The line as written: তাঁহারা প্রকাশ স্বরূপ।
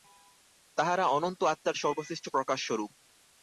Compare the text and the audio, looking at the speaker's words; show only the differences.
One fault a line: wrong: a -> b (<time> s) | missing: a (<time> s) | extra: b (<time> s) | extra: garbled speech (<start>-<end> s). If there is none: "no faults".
extra: অনন্ত আত্মার সর্বশ্রেষ্ঠ (1.1 s)